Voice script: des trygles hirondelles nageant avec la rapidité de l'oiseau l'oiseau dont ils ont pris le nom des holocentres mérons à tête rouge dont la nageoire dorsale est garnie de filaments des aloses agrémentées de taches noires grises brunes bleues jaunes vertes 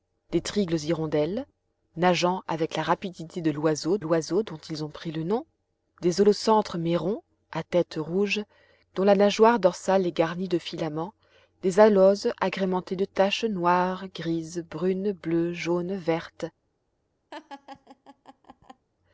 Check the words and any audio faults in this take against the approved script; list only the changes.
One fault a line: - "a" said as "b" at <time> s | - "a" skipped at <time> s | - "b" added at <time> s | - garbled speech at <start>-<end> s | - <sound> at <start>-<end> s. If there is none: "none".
- laugh at 17.3-18.9 s